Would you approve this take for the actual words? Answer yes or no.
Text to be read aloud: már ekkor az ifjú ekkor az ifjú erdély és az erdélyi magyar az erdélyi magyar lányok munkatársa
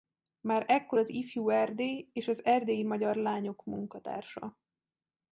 no